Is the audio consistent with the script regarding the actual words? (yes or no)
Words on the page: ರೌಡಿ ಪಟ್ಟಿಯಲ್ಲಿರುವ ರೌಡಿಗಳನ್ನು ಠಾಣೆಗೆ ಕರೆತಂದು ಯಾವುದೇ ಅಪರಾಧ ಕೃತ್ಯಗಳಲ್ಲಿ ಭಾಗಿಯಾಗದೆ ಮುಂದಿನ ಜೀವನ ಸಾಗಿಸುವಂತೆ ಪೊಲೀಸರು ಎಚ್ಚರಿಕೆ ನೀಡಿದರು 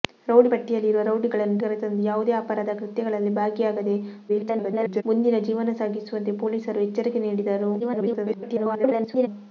no